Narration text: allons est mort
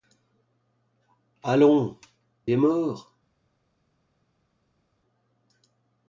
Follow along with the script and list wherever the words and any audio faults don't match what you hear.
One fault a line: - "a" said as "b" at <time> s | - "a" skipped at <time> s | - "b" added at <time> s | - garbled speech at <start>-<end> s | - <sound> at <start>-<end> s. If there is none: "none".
none